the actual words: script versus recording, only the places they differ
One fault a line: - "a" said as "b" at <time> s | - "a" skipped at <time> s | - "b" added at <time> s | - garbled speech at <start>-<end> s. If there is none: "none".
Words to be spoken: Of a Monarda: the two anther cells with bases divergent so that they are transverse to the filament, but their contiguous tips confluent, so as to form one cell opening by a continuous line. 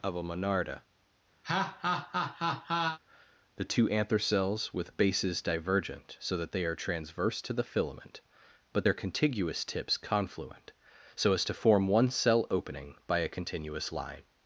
none